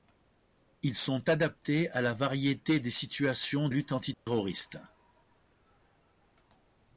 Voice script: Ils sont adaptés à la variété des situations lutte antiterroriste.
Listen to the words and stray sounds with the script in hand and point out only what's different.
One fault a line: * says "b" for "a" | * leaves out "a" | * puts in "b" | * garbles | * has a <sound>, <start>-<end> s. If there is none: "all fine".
* has a dropout, 4.1-4.3 s